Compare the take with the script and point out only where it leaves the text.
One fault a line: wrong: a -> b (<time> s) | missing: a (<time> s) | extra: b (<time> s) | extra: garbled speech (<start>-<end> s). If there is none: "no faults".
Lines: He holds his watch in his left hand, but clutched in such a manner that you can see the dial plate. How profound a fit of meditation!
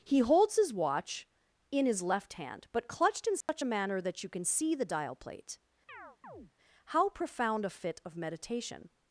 no faults